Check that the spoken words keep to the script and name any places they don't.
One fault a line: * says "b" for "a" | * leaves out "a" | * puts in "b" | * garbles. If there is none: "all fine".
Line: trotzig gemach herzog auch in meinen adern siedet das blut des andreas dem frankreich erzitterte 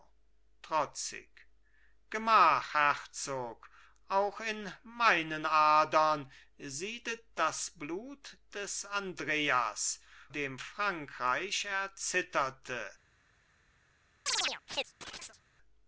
all fine